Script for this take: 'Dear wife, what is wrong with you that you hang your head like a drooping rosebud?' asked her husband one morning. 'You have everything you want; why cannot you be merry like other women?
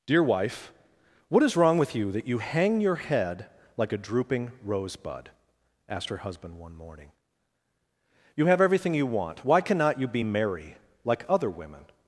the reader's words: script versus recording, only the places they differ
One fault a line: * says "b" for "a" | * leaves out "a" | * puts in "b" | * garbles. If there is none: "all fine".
all fine